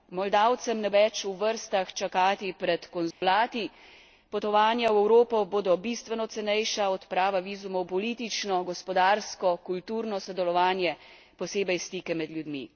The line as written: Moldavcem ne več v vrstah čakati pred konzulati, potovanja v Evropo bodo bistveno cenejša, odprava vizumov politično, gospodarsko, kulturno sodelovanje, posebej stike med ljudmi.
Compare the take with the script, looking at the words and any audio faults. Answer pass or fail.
fail